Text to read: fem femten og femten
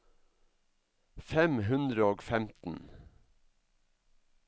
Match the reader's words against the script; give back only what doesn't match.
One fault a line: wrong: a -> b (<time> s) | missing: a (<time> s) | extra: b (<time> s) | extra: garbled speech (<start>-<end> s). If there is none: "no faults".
wrong: femten -> hundre (1.7 s)